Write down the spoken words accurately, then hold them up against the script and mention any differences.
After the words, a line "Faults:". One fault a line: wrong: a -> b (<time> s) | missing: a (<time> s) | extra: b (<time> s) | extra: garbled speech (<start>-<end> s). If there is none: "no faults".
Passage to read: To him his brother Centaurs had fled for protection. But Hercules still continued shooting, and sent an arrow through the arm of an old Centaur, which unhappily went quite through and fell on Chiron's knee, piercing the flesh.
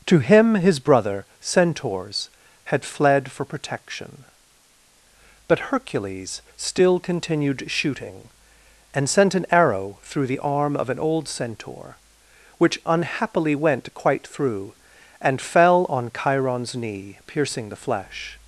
To him his brother Centaurs had fled for protection. But Hercules still continued shooting, and sent an arrow through the arm of an old Centaur, which unhappily went quite through and fell on Chiron's knee, piercing the flesh.
Faults:
no faults